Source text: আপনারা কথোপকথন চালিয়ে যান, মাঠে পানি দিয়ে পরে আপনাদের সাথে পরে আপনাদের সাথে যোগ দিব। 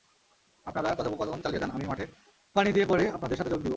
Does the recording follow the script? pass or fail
fail